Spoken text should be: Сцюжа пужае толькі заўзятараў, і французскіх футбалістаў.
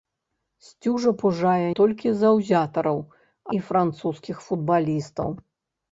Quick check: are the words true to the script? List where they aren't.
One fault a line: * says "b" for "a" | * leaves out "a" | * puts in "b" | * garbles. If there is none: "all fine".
all fine